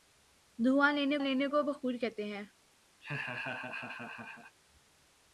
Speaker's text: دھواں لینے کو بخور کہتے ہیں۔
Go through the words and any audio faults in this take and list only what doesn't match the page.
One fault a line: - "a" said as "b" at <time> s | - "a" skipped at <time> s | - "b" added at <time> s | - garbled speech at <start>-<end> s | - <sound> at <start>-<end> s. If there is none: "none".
- "لینے" added at 1.2 s
- laugh at 3.0-4.6 s